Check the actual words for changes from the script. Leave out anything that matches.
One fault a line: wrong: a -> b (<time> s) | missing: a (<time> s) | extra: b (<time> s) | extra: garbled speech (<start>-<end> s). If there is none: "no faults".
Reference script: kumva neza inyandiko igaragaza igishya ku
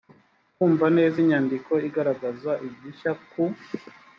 no faults